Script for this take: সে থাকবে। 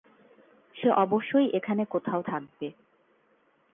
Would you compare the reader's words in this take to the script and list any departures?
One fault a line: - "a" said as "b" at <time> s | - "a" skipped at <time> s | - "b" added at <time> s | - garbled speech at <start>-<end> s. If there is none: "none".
- "অবশ্যই এখানে কোথাও" added at 0.9 s